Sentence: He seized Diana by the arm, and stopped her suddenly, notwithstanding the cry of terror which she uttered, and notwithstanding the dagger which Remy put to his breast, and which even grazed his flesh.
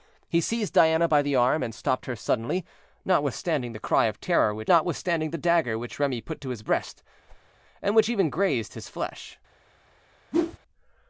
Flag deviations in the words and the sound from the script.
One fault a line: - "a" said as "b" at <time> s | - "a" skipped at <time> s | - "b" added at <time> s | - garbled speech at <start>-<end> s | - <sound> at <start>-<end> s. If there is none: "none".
- "she uttered and" skipped at 4.7 s
- whoosh at 7.3-7.5 s
- whoosh at 10.3-10.6 s